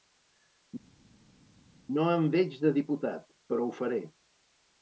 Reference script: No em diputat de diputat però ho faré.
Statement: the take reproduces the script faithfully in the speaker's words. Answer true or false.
false